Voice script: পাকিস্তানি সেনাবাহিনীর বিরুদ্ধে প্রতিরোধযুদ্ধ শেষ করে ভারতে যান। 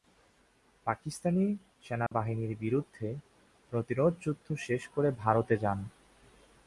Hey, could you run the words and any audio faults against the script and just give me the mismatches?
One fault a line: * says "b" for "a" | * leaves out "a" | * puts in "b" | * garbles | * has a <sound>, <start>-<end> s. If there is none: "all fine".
* has a dropout, 2.1-2.1 s